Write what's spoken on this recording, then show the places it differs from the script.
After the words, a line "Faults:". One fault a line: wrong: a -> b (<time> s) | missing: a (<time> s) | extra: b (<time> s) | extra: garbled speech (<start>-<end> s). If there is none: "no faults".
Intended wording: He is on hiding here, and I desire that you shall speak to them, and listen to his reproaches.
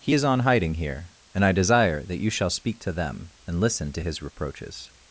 He is on hiding here, and I desire that you shall speak to them, and listen to his reproaches.
Faults:
no faults